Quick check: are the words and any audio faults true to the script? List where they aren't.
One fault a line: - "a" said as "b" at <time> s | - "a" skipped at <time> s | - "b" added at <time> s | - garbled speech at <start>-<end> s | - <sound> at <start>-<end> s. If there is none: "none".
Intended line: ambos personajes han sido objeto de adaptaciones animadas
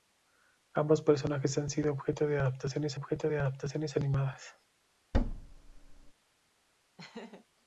- "objeto de adaptaciones" added at 3.0 s
- thud at 5.1-6.1 s
- laugh at 7.0-7.5 s